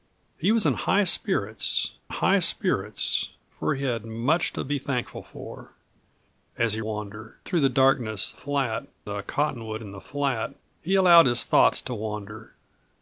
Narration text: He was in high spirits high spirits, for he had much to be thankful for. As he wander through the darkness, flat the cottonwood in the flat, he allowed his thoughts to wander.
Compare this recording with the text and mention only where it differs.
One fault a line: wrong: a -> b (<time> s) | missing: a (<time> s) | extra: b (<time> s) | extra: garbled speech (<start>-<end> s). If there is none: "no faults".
no faults